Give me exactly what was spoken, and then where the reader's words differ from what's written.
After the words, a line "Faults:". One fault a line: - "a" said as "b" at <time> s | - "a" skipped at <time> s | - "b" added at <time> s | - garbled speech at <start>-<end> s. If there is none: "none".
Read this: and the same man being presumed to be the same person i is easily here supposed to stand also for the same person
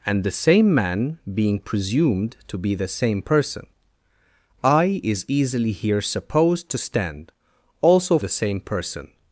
and the same man being presumed to be the same person i is easily here supposed to stand also the same person
Faults:
- "for" skipped at 8.2 s